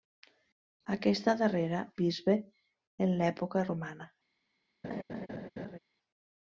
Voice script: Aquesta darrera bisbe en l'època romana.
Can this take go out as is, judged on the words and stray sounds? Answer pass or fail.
fail